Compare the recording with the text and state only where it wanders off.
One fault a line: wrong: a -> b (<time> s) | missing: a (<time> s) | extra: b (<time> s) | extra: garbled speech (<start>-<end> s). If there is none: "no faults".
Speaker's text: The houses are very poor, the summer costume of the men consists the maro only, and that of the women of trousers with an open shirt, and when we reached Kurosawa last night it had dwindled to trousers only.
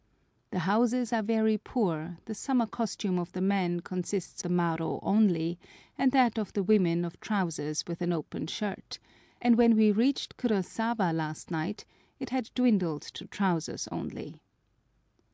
no faults